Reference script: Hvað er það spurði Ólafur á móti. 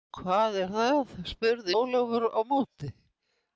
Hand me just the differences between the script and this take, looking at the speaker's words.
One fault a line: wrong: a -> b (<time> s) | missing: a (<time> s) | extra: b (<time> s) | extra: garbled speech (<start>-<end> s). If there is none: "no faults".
no faults